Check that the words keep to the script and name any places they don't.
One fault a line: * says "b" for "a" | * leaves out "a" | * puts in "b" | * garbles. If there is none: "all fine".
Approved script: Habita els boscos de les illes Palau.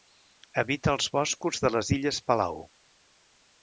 all fine